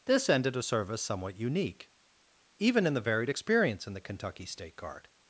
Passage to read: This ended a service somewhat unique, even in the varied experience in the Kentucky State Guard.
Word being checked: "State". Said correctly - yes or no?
yes